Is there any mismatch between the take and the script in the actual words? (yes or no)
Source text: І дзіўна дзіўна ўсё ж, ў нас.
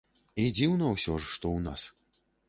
yes